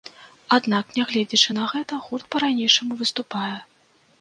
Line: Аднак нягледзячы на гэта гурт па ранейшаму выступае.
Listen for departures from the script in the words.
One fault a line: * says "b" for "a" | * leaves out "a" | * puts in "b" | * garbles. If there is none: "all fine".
all fine